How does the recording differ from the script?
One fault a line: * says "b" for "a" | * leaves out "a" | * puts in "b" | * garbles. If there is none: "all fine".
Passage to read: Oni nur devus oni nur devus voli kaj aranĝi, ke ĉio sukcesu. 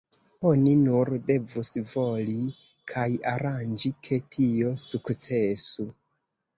* leaves out "oni nur devus"
* says "tio" for "ĉio"